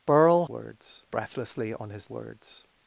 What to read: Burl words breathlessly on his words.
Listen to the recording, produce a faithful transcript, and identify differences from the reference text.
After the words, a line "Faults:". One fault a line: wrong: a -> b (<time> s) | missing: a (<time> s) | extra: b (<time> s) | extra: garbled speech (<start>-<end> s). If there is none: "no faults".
Burl words breathlessly on his words.
Faults:
no faults